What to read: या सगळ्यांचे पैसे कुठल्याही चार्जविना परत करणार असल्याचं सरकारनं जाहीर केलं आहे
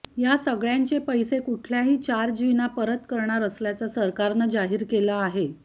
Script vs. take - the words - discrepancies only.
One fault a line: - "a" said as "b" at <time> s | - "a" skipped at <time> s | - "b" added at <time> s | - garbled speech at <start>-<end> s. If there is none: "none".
none